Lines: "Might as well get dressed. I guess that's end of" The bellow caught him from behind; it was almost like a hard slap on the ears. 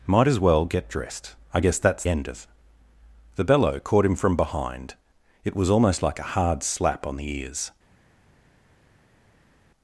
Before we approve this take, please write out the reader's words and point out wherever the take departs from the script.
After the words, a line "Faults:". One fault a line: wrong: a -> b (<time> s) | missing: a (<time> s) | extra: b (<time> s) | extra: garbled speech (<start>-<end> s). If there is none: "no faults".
"Might as well get dressed. I guess that's end of" The bellow caught him from behind; it was almost like a hard slap on the ears.
Faults:
no faults